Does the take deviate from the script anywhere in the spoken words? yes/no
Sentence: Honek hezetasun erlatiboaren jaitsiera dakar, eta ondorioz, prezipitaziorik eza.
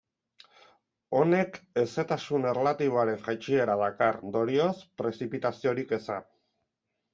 yes